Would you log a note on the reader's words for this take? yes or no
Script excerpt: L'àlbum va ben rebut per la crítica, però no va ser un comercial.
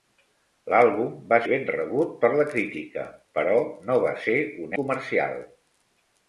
no